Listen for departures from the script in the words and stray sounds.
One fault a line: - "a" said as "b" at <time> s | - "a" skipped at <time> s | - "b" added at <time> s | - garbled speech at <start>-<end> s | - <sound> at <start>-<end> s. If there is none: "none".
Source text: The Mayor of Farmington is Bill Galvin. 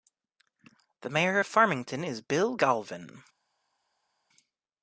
none